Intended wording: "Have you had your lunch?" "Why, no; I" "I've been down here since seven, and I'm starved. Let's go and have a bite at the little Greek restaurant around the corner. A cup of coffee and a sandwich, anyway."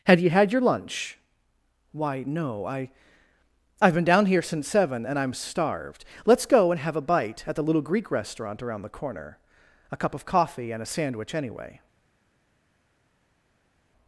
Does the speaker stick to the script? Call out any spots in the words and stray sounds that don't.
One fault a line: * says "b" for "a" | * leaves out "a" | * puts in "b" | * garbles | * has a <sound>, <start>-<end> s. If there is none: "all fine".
* says "Had" for "Have"